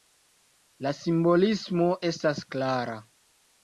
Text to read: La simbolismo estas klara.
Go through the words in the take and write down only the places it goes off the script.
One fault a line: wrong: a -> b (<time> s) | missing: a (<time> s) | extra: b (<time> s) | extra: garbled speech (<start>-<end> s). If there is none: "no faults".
no faults